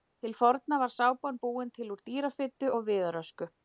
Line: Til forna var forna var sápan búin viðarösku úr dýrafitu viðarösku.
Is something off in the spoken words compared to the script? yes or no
yes